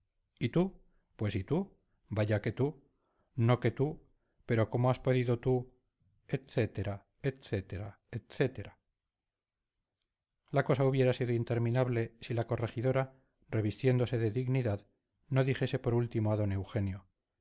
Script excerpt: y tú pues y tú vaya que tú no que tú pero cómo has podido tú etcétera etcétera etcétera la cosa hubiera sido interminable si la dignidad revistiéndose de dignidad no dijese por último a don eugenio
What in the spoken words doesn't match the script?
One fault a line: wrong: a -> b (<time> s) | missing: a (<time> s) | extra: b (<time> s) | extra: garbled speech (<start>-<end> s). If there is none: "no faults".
wrong: dignidad -> corregidora (12.5 s)